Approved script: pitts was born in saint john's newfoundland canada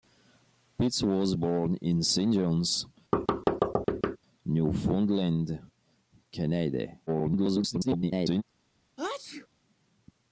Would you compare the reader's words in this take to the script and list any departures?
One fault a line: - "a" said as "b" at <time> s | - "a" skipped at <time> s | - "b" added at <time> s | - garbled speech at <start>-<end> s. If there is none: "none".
- garbled speech at 7.1-8.4 s